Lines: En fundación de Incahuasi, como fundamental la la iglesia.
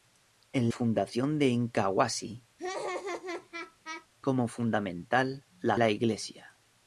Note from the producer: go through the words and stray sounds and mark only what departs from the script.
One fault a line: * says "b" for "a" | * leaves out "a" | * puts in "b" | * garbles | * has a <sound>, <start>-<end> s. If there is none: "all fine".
* has a laugh, 2.6-4.1 s